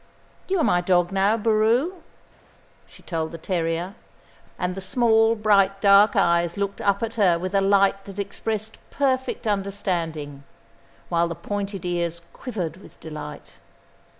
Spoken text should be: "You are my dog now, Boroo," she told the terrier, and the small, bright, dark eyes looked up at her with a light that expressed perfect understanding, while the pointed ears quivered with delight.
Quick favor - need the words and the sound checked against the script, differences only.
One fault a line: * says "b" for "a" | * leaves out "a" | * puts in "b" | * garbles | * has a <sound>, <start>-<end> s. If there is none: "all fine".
all fine